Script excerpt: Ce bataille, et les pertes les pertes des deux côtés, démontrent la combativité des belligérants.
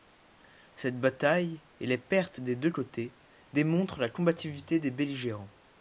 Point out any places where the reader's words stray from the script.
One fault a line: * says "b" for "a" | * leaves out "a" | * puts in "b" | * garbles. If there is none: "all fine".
* says "Cette" for "Ce"
* leaves out "les pertes"